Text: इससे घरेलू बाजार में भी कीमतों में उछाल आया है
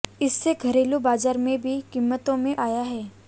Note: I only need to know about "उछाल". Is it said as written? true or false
false